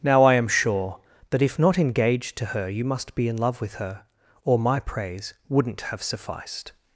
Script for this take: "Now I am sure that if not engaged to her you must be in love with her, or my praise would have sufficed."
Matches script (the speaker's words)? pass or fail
fail